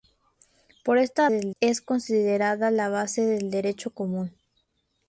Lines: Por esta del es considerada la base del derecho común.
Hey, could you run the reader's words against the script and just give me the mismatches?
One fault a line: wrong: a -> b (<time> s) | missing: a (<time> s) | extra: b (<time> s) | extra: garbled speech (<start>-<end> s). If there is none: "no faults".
no faults